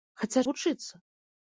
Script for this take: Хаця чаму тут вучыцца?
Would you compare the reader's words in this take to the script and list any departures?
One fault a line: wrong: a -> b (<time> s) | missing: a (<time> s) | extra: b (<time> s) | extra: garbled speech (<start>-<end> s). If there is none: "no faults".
missing: чаму тут (0.4 s)